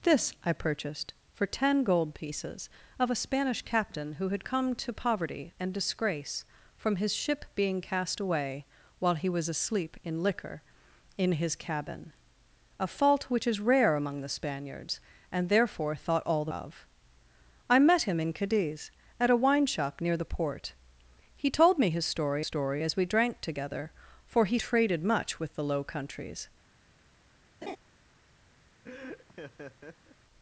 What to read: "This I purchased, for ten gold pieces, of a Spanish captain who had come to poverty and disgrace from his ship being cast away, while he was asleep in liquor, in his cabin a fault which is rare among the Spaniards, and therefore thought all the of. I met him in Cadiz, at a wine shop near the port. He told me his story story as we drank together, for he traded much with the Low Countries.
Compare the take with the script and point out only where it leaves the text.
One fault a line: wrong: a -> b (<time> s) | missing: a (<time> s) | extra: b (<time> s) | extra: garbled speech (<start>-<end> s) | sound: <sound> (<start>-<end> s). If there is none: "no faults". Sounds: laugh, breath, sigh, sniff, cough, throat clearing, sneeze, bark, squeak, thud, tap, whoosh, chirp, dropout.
sound: laugh (27.6-27.8 s)
sound: laugh (28.8-30.2 s)